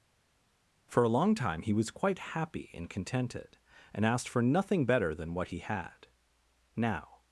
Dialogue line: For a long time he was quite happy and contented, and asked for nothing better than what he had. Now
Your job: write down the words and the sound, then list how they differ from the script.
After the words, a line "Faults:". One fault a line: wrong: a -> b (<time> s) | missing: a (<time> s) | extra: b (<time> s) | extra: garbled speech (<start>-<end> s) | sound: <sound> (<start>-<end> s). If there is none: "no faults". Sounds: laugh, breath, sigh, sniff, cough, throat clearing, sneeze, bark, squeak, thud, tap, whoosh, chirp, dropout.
For a long time he was quite happy and contented, and asked for nothing better than what he had. Now
Faults:
no faults